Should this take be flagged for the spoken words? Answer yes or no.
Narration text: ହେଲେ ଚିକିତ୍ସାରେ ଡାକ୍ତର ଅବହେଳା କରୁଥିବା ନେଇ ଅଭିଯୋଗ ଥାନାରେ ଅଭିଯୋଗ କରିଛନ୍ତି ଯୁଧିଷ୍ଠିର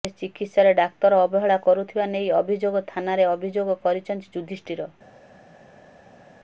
no